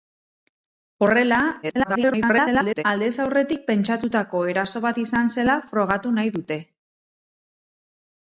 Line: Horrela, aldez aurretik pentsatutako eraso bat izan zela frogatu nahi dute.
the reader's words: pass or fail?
fail